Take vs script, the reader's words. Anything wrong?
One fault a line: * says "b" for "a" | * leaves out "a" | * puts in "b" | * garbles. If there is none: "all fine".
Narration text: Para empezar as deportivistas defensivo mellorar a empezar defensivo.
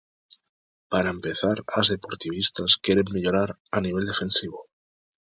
* says "queren" for "defensivo"
* says "nivel" for "empezar"